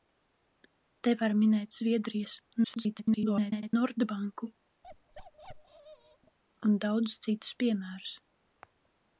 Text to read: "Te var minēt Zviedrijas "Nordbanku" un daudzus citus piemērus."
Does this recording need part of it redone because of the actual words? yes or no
yes